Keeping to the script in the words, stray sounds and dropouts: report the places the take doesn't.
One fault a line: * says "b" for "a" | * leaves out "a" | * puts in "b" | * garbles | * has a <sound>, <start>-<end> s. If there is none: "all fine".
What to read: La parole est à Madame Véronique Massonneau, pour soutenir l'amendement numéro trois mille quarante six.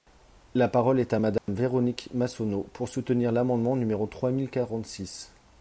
* has a dropout, 1.4-1.5 s